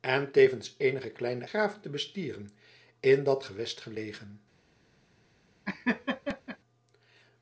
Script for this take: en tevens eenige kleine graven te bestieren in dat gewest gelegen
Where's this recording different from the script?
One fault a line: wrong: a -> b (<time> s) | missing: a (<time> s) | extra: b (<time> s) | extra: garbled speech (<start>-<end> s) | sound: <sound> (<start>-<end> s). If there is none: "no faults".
sound: laugh (5.6-6.6 s)